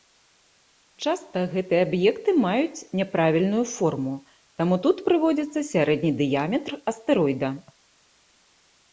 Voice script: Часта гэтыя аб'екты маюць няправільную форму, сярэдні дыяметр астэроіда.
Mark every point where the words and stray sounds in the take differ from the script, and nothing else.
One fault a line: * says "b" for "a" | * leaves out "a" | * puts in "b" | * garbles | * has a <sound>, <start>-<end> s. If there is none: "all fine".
* puts in "таму тут прыводзіцца"